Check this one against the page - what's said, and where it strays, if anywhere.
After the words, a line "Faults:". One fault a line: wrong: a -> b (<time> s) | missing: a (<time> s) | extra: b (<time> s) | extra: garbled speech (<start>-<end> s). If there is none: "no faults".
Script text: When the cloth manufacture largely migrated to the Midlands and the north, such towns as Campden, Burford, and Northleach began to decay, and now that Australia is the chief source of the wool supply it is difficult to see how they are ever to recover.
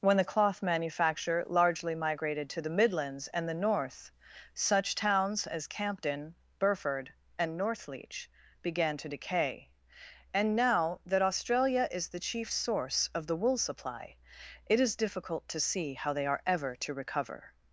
When the cloth manufacture largely migrated to the Midlands and the north, such towns as Campden, Burford, and Northleach began to decay, and now that Australia is the chief source of the wool supply it is difficult to see how they are ever to recover.
Faults:
no faults